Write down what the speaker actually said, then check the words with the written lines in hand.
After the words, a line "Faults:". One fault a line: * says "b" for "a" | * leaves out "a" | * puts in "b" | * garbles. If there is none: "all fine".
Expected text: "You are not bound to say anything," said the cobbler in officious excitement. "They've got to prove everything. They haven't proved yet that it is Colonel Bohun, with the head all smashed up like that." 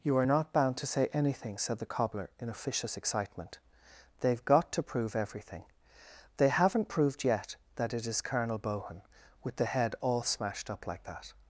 "You are not bound to say anything," said the cobbler in officious excitement. "They've got to prove everything. They haven't proved yet that it is Colonel Bohun, with the head all smashed up like that."
Faults:
all fine